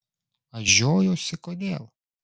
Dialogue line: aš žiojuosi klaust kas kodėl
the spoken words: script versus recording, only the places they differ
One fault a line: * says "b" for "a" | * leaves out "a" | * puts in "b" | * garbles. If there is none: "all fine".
* leaves out "klaust kas"